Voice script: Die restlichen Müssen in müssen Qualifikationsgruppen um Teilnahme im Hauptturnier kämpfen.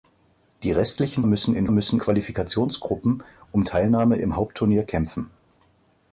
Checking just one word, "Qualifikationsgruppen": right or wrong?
right